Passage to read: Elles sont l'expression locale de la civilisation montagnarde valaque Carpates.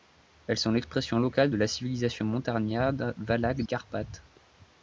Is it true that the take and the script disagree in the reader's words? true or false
false